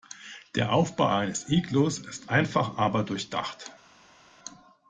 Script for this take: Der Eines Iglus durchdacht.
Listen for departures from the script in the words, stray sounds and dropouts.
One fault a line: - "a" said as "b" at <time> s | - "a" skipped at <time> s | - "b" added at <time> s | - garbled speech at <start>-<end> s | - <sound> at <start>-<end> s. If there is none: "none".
- "Aufbau" added at 0.7 s
- "ist einfach aber" added at 2.0 s